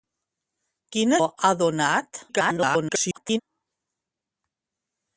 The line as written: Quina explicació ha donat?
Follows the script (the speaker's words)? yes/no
no